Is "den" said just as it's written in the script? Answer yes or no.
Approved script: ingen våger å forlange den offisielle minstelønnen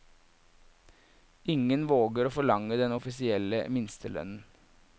yes